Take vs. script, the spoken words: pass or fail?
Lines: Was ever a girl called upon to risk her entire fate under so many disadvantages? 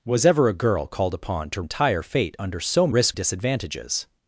fail